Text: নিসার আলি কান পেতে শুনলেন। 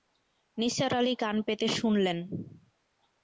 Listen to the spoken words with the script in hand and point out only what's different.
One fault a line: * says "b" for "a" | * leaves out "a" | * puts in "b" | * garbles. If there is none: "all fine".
all fine